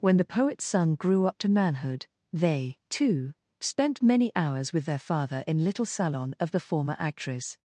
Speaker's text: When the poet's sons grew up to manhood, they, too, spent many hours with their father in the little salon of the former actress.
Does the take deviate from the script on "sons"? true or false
true